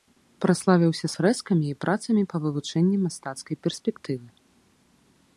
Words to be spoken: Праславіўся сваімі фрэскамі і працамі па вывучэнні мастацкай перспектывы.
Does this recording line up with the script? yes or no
no